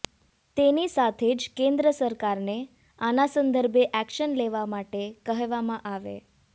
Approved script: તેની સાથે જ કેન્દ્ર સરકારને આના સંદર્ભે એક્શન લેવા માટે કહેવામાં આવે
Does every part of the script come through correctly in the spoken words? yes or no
yes